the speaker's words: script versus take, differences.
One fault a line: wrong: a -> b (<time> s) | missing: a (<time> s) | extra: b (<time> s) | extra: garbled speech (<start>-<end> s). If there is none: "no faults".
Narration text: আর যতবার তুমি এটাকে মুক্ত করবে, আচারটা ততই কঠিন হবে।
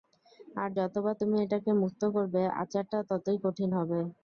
no faults